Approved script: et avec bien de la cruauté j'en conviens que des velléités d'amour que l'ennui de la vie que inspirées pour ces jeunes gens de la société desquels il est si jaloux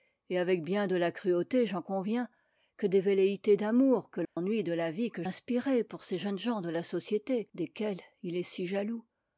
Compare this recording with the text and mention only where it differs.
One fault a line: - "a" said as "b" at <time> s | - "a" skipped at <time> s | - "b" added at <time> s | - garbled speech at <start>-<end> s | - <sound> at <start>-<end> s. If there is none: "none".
- dropout at 4.2-4.4 s